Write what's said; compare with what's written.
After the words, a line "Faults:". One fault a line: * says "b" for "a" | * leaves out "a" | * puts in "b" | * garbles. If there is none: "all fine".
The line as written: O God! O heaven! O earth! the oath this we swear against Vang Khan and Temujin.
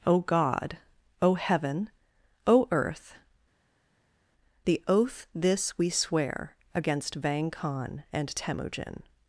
O God! O heaven! O earth! the oath this we swear against Vang Khan and Temujin.
Faults:
all fine